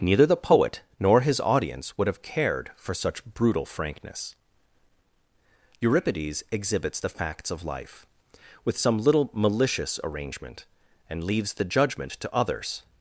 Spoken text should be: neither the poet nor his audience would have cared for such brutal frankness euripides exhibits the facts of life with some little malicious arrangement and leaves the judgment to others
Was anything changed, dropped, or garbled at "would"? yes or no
no